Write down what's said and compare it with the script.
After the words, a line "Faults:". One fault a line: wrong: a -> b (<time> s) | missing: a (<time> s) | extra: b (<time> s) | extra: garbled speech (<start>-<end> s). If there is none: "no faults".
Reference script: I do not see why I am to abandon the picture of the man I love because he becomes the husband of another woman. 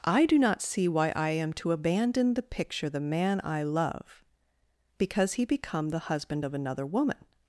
I do not see why I am to abandon the picture the man I love because he become the husband of another woman.
Faults:
missing: of (2.9 s)
wrong: becomes -> become (5.5 s)